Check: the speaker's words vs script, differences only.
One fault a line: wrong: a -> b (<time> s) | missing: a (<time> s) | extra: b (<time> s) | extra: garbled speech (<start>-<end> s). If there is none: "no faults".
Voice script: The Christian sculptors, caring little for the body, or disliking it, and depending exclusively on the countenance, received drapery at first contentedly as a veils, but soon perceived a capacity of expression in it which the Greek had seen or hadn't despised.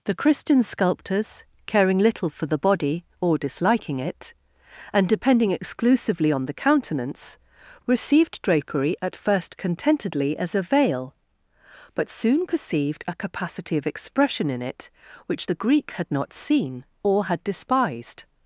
wrong: veils -> veil (10.6 s)
extra: not (16.1 s)
wrong: hadn't -> had (17.2 s)